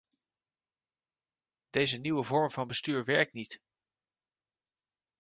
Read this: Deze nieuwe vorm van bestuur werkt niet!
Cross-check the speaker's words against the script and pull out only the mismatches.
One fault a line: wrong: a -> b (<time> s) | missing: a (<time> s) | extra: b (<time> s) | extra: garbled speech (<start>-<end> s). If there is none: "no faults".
no faults